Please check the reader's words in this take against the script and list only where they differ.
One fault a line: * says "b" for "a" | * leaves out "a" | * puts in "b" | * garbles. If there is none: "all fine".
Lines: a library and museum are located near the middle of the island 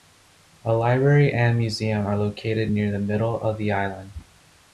all fine